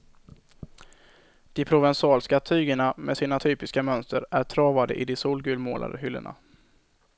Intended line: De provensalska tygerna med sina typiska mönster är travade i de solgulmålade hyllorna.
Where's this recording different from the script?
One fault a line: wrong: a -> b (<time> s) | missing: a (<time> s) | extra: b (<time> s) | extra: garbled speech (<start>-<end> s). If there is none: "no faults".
no faults